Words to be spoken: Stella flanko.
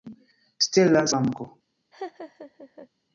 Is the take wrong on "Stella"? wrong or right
right